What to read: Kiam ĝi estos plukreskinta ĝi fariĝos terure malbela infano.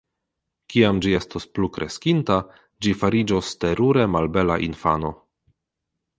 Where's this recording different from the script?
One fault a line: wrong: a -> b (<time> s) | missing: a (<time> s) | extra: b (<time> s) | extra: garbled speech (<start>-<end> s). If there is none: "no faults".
no faults